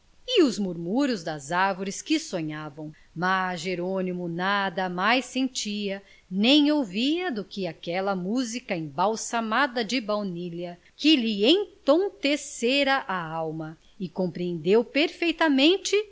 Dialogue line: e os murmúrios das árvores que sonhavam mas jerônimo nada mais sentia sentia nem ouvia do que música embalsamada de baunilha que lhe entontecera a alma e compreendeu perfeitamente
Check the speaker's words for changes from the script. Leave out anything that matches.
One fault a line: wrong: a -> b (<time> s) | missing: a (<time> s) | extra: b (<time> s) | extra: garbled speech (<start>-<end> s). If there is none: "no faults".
missing: sentia (6.0 s)
extra: aquela (7.7 s)